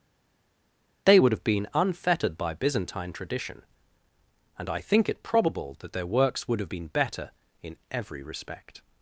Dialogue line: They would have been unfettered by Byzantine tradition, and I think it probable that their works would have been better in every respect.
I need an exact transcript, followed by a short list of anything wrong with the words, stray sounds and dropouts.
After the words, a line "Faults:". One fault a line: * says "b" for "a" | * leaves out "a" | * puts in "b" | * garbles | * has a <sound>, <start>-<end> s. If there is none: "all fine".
They would have been unfettered by Byzantine tradition, and I think it probable that their works would have been better in every respect.
Faults:
all fine